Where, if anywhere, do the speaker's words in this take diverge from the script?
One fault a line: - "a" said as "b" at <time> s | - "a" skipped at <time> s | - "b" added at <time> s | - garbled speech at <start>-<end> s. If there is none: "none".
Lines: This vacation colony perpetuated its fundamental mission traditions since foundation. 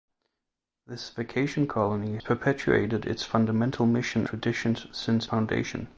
none